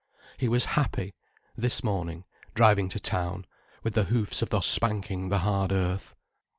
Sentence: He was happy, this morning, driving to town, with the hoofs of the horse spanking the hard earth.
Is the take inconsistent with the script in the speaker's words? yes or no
yes